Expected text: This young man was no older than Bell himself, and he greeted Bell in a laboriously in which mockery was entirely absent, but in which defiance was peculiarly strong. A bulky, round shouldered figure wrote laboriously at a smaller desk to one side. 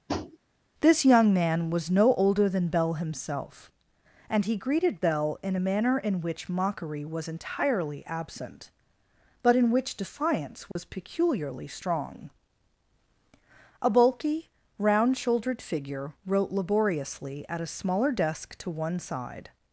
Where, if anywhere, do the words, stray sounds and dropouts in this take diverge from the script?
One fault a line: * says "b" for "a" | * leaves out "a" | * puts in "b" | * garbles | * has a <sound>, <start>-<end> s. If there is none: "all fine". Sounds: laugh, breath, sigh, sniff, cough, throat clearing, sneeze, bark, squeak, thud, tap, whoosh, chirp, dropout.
* has a tap, 0.1-0.4 s
* says "manner" for "laboriously"
* has a dropout, 10.7-10.8 s